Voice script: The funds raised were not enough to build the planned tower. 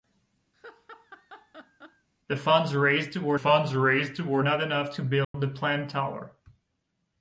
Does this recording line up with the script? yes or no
no